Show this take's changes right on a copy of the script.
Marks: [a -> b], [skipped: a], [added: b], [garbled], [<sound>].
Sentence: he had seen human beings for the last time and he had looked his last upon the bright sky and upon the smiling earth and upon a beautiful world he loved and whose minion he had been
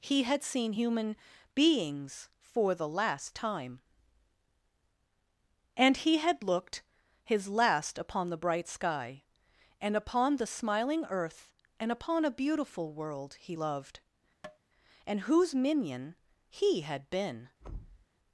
he had seen human beings for the last time and he had looked his last upon the bright sky and upon the smiling earth and upon a beautiful world he loved [tap] and whose minion he had been [thud]